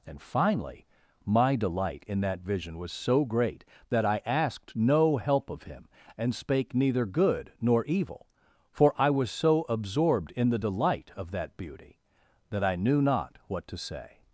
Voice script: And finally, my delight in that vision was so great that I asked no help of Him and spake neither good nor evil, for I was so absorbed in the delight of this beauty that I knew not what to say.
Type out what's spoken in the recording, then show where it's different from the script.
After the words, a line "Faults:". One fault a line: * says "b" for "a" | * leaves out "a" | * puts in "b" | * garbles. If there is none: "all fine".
And finally, my delight in that vision was so great that I asked no help of Him and spake neither good nor evil, for I was so absorbed in the delight of that beauty that I knew not what to say.
Faults:
* says "that" for "this"